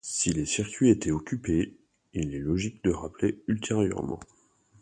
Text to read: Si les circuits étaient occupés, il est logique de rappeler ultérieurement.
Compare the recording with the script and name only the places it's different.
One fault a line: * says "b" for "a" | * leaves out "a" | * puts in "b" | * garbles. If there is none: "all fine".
all fine